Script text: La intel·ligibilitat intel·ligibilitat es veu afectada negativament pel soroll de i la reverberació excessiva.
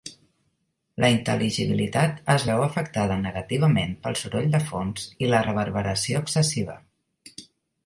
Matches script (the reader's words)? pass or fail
fail